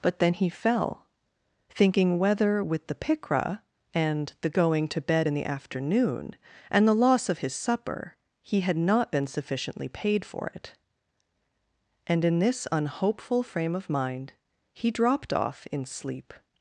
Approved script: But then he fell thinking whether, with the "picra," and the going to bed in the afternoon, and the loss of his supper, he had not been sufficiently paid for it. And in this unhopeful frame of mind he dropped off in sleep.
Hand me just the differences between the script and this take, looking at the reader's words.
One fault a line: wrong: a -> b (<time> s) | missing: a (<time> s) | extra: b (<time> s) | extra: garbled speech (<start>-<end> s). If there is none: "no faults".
no faults